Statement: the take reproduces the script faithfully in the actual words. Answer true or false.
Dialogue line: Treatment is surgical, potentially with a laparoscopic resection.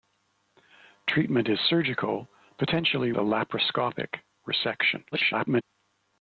false